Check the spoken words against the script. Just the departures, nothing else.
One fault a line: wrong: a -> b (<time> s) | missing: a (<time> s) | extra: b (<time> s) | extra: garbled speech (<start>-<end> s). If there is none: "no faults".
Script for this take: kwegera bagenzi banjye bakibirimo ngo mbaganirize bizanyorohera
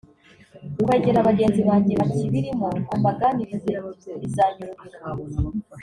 no faults